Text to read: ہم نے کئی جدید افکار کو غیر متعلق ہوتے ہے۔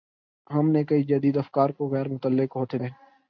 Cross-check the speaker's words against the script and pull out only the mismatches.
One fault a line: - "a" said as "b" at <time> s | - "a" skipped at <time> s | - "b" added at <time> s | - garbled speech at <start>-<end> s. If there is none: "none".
none